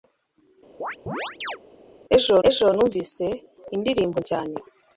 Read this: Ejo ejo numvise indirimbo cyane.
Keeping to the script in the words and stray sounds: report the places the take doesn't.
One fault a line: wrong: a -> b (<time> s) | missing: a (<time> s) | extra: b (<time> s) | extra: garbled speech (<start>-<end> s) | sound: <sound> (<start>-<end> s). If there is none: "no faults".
sound: chirp (0.8-1.6 s)